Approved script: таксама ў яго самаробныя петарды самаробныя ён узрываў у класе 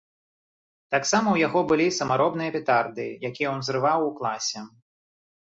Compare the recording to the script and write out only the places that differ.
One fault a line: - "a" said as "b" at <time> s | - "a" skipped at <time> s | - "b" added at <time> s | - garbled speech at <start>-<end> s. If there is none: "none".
- "былі" added at 1.7 s
- "самаробныя" said as "якія" at 3.3 s